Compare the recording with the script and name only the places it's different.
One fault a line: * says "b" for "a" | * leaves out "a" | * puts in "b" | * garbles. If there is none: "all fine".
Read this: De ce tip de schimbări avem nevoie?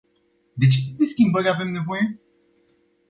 all fine